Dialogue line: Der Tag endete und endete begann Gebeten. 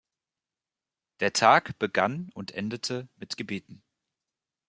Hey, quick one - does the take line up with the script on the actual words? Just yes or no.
no